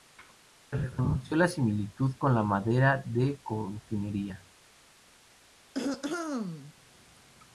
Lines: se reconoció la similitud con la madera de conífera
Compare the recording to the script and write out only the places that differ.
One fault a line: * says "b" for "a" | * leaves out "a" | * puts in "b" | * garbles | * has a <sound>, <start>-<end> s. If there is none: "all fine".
* has a throat clearing, 5.7-6.7 s